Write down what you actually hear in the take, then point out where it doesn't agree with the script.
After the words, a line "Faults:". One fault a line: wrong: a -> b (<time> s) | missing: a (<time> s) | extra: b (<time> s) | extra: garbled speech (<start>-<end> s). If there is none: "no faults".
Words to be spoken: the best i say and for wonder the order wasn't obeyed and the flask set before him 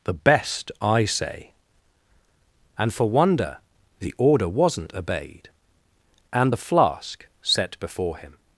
the best i say and for wonder the order wasn't obeyed and the flask set before him
Faults:
no faults